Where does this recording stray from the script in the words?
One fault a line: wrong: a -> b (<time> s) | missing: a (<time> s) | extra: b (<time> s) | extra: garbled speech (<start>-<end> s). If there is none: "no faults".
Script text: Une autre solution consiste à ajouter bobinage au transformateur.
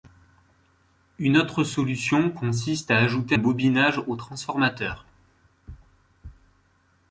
no faults